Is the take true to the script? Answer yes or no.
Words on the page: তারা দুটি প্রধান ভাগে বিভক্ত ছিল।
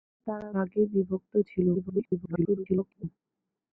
no